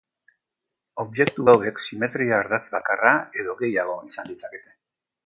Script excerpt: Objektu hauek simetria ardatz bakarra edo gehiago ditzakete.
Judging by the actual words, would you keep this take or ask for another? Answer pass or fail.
fail